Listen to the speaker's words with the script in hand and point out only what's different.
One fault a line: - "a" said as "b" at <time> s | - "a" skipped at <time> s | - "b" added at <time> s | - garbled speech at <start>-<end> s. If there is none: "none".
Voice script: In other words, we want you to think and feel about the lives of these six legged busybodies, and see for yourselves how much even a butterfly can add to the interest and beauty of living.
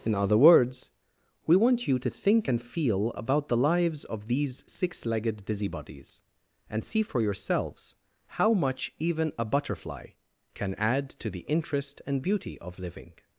none